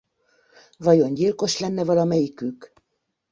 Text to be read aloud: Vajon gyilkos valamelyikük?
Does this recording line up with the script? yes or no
no